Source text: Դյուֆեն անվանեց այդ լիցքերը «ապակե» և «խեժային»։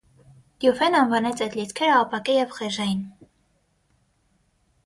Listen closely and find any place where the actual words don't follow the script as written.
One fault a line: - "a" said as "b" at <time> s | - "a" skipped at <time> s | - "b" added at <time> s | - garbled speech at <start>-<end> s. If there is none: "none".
none